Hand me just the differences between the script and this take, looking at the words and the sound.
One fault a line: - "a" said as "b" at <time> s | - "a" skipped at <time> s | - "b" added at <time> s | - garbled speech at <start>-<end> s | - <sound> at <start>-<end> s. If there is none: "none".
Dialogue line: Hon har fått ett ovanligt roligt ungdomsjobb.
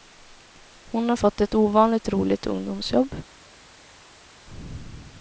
none